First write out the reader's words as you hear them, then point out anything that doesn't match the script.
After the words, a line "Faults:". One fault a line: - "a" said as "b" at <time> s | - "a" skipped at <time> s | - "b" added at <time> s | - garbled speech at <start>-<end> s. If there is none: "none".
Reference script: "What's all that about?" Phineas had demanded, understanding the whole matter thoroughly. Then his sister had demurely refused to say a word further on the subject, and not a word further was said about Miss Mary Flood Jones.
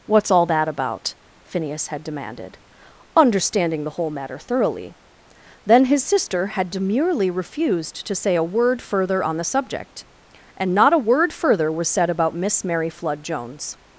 "What's all that about?" Phineas had demanded, understanding the whole matter thoroughly. Then his sister had demurely refused to say a word further on the subject, and not a word further was said about Miss Mary Flood Jones.
Faults:
none